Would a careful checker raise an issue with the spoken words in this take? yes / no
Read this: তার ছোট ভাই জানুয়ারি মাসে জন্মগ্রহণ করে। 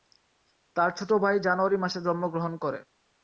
no